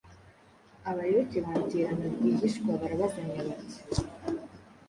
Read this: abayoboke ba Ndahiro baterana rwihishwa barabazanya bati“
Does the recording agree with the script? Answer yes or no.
no